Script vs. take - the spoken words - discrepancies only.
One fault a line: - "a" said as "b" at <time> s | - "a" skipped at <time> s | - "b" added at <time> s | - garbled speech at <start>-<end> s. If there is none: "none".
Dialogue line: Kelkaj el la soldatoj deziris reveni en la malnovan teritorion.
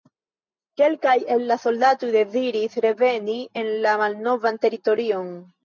none